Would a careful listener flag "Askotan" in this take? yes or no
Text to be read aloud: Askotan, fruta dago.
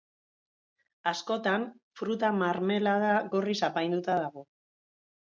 no